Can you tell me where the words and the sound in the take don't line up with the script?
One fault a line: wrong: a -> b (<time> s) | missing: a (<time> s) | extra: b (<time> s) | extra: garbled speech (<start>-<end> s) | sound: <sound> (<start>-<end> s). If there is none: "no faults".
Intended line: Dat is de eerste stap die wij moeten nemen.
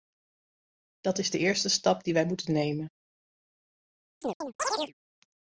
sound: chirp (4.2-4.9 s)